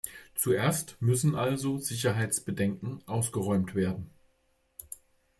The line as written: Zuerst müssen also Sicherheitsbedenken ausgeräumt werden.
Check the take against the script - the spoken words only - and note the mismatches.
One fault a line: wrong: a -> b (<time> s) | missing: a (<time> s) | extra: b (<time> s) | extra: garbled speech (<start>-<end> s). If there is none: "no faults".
no faults